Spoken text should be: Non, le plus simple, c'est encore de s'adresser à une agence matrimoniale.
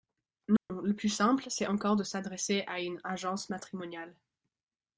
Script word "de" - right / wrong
right